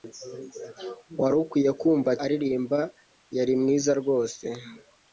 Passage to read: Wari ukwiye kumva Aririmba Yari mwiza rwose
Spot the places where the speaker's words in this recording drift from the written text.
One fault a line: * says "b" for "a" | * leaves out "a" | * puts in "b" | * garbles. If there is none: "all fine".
all fine